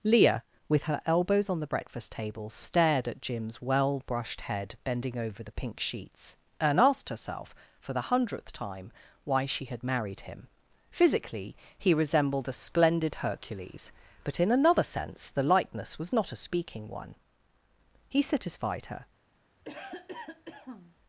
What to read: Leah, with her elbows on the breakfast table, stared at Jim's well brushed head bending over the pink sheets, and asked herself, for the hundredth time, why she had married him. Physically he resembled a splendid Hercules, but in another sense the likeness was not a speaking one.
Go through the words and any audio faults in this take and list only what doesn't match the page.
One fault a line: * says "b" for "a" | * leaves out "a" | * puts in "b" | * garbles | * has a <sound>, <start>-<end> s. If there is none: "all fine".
* puts in "He satisfied her"
* has a cough, 19.6-21.0 s